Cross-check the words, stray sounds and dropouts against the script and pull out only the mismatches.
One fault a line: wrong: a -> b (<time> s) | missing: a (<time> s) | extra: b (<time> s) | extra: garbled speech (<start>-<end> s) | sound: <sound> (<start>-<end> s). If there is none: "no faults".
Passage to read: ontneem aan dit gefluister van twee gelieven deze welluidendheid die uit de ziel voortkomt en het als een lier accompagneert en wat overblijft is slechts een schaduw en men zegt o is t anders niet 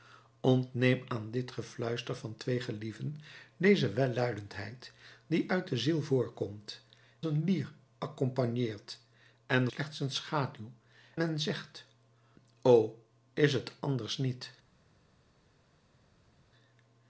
missing: en het als (6.8 s)
missing: wat overblijft is (9.7 s)
missing: en (10.7 s)